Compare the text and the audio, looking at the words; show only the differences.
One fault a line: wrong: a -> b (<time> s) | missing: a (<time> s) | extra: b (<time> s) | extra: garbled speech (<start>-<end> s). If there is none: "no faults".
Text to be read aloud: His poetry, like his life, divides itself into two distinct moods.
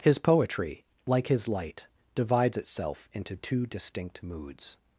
wrong: life -> light (1.5 s)